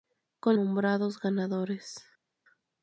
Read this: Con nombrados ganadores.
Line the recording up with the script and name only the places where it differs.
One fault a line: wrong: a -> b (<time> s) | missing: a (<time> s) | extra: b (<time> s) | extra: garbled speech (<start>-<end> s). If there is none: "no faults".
no faults